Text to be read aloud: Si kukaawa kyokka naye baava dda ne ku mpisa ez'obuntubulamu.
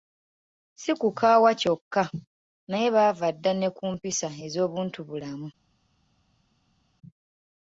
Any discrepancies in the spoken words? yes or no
no